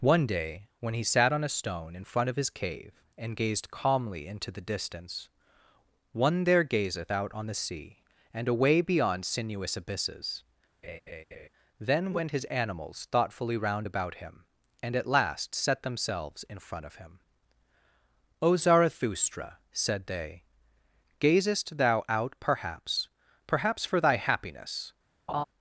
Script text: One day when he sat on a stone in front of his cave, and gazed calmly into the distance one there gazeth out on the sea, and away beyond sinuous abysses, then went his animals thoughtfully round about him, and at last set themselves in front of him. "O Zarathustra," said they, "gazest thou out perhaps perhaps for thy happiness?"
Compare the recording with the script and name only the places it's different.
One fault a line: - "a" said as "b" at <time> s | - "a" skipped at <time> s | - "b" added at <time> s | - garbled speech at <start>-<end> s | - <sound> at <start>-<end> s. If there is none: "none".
- laugh at 10.8-11.5 s
- laugh at 25.3-25.4 s